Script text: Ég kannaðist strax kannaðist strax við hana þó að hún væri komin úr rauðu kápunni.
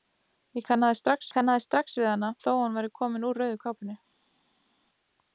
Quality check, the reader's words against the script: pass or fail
pass